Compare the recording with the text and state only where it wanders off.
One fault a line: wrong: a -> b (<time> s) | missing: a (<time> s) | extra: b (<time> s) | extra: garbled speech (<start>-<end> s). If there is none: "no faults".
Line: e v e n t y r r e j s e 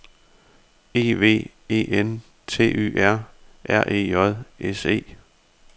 no faults